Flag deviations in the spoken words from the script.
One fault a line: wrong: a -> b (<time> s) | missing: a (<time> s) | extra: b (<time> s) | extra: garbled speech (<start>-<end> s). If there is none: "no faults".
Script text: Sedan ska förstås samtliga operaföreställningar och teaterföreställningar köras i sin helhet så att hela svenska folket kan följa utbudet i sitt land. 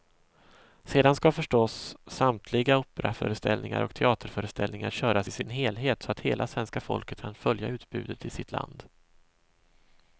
no faults